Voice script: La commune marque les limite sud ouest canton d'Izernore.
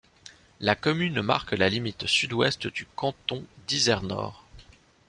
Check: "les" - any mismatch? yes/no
yes